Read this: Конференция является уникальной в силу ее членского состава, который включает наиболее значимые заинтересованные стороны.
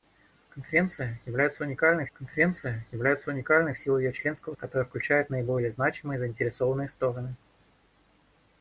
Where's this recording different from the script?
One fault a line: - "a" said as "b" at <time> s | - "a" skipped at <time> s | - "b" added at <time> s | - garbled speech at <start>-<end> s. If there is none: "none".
- "конференция является уникальной" added at 2.1 s
- "состава" skipped at 4.5 s